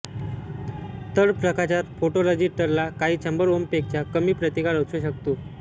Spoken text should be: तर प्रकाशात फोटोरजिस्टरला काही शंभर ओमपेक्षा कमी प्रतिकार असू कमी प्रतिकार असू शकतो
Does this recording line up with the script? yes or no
no